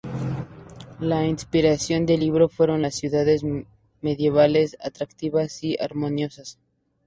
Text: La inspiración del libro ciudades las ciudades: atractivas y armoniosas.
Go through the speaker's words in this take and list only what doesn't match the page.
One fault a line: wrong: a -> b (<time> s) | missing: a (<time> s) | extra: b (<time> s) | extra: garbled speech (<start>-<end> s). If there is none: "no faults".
wrong: ciudades -> fueron (2.5 s)
extra: medievales (4.0 s)